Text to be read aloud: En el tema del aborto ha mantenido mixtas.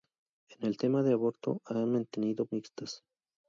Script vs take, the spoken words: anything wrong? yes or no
no